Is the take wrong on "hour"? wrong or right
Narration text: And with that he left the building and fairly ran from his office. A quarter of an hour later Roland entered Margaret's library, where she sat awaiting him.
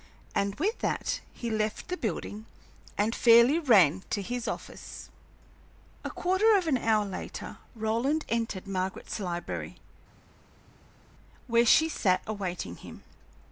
right